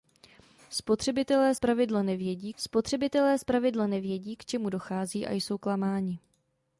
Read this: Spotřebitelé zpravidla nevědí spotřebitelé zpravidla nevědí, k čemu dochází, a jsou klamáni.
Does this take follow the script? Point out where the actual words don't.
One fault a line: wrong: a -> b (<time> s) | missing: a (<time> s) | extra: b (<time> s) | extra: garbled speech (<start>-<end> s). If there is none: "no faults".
no faults